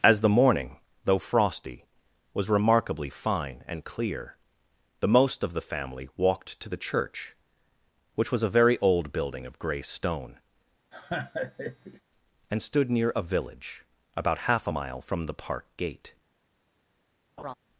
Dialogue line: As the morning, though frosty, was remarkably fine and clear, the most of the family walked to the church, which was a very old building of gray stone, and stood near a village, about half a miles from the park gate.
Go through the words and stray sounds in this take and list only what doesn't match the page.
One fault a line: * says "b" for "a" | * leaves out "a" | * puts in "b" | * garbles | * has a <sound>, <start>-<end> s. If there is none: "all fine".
* has a laugh, 10.9-12.0 s
* says "mile" for "miles"
* has a laugh, 17.4-17.5 s